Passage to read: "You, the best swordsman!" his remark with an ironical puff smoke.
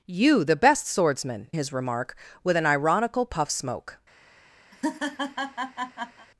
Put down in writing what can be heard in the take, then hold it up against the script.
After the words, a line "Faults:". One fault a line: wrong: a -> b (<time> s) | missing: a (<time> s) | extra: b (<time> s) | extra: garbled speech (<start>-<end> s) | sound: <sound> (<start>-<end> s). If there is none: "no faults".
"You, the best swordsman!" his remark with an ironical puff smoke.
Faults:
sound: laugh (4.7-6.3 s)